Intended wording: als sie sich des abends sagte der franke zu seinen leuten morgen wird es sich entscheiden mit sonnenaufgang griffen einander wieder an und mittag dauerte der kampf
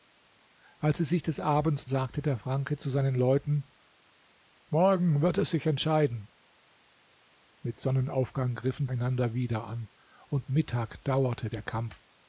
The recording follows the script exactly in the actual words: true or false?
true